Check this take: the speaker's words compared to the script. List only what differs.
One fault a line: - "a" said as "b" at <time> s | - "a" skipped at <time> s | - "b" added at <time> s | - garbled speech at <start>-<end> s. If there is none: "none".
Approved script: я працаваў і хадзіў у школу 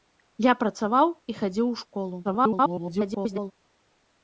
- garbled speech at 2.2-3.5 s